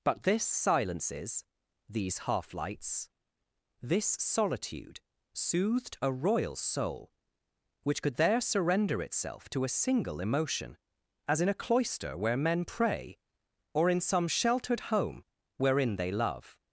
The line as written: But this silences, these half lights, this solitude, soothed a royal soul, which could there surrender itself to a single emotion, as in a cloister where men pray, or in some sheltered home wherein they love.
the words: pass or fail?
pass